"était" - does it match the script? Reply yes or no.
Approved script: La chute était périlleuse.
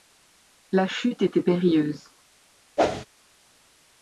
yes